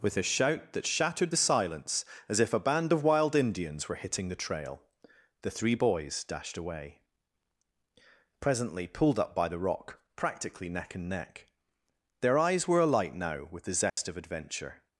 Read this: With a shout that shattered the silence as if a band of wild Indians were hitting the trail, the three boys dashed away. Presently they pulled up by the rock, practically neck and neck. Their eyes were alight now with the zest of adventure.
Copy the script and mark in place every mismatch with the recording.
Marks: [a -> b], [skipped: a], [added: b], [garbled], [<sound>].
With a shout that shattered the silence as if a band of wild Indians were hitting the trail, the three boys dashed away. Presently [skipped: they] pulled up by the rock, practically neck and neck. Their eyes were alight now with the zest [dropout] of adventure.